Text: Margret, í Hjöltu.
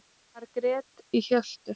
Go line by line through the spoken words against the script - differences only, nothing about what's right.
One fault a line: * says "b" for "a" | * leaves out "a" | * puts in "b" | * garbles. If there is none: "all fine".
all fine